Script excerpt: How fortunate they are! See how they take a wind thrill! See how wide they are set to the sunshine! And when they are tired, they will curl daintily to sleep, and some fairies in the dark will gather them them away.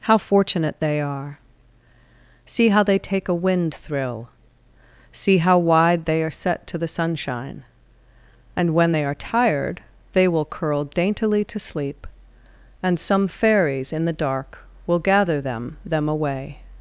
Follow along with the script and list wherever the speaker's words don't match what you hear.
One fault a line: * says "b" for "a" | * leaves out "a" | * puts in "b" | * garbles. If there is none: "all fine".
all fine